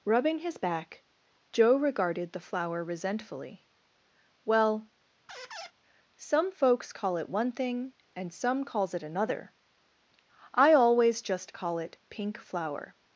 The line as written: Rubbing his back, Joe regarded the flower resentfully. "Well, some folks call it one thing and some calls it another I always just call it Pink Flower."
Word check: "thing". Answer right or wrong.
right